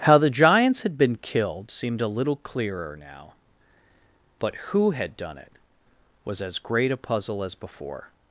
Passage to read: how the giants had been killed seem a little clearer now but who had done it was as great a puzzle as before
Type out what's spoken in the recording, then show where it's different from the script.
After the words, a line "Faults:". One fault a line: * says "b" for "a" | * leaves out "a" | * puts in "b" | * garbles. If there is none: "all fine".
how the giants had been killed seemed a little clearer now but who had done it was as great a puzzle as before
Faults:
* says "seemed" for "seem"